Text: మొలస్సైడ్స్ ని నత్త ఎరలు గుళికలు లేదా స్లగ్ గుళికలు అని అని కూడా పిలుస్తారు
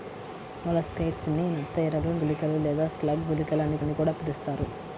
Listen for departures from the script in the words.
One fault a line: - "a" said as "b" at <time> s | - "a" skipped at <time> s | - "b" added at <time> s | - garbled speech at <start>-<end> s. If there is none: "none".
none